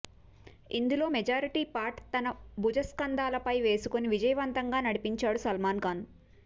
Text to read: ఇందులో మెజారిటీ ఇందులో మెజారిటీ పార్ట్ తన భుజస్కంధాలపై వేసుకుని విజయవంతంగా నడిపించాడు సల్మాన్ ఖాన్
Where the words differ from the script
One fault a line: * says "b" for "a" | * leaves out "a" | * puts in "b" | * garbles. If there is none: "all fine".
* leaves out "ఇందులో మెజారిటీ"